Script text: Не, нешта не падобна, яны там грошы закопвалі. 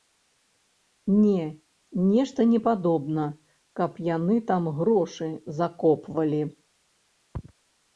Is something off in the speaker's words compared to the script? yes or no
yes